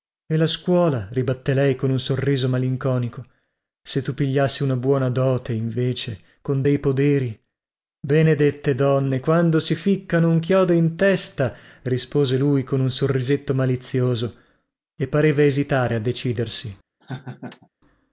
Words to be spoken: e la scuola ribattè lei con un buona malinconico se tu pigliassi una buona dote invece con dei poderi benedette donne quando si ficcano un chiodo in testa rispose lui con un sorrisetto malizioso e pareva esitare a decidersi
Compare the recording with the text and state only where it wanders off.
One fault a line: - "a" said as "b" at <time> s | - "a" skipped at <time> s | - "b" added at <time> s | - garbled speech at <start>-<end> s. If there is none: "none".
- "buona" said as "sorriso" at 2.0 s